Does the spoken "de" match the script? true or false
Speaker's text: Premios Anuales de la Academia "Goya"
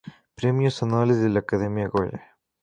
true